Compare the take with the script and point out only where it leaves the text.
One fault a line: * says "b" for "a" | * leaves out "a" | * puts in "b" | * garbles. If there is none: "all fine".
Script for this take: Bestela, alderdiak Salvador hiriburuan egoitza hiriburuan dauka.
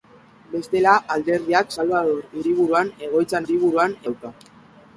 all fine